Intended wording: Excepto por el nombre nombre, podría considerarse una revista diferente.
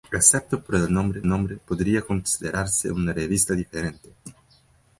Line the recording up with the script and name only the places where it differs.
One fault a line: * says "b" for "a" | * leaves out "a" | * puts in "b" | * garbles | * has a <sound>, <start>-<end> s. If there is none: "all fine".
all fine